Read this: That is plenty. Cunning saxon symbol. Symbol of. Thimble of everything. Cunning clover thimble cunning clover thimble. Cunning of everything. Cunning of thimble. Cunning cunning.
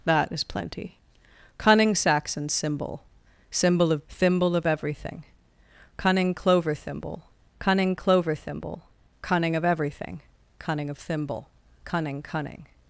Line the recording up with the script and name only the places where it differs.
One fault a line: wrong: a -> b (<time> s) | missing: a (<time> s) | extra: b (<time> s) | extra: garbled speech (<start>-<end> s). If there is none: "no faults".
no faults